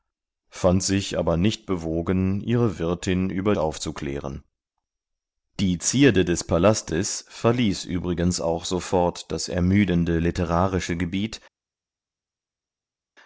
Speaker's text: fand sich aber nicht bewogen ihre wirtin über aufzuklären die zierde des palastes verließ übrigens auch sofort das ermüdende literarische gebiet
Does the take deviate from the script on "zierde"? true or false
false